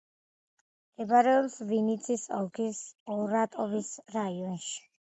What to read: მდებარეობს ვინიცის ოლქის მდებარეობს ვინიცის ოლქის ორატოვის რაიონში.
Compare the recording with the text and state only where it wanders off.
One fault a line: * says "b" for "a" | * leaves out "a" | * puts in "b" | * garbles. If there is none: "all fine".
* leaves out "მდებარეობს ვინიცის ოლქის"